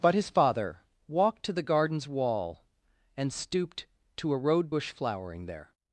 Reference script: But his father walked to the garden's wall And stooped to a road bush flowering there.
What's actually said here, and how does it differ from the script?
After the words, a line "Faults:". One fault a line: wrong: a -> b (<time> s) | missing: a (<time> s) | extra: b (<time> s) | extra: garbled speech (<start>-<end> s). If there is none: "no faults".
But his father walked to the garden's wall And stooped to a road bush flowering there.
Faults:
no faults